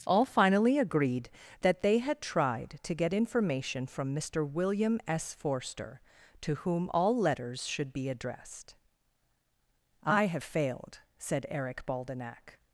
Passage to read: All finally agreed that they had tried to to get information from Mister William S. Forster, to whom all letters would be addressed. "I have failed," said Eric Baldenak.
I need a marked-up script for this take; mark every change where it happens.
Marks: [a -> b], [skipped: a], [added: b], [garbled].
All finally agreed that they had tried to [skipped: to] get information from Mister William S. Forster, to whom all letters [would -> should] be addressed. "I have failed," said Eric Baldenak.